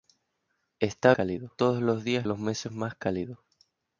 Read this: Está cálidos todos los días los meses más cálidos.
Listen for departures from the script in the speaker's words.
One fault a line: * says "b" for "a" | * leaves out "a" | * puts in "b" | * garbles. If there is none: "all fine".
all fine